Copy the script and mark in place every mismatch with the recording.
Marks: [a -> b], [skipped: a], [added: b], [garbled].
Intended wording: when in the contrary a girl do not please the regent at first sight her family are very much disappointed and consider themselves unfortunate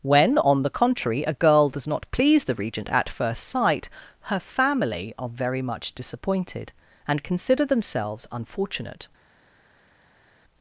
when [in -> on] the contrary a girl [do -> does] not please the regent at first sight her family are very much disappointed and consider themselves unfortunate